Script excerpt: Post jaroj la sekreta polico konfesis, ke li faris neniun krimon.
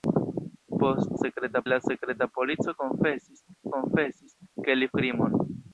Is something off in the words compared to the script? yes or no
yes